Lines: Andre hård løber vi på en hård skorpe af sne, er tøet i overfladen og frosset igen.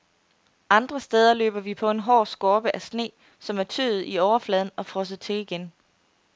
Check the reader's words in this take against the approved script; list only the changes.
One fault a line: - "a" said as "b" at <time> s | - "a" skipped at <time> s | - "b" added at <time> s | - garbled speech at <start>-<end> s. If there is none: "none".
- "hård" said as "steder" at 1.0 s
- "som" added at 3.4 s
- "til" added at 5.2 s